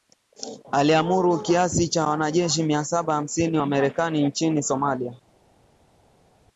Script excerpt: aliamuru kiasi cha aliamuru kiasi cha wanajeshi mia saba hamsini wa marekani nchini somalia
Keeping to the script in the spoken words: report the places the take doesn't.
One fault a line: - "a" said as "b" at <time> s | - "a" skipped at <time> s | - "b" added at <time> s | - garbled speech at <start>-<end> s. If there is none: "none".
- "aliamuru kiasi cha" skipped at 2.0 s